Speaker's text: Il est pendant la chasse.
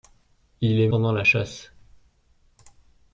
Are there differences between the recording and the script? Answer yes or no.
no